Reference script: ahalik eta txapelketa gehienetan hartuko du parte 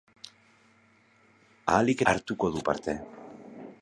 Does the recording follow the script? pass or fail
fail